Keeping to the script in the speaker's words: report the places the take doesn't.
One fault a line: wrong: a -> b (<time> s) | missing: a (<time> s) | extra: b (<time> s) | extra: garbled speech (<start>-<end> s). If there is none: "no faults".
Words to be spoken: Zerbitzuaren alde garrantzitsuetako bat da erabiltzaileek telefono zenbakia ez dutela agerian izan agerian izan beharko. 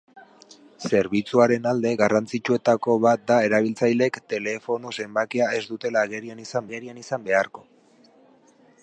no faults